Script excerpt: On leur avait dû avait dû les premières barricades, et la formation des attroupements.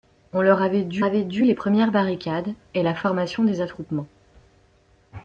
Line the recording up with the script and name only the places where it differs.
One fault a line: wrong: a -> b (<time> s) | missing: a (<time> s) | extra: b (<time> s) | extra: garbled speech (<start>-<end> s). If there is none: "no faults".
no faults